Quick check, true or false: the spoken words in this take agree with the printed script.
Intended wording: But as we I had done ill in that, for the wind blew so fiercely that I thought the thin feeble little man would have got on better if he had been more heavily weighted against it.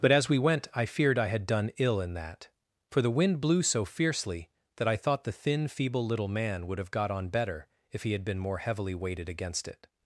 false